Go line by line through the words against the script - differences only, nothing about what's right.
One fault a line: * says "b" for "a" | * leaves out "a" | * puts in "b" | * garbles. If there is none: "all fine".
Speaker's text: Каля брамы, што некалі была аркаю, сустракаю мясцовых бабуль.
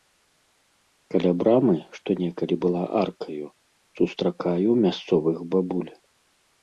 all fine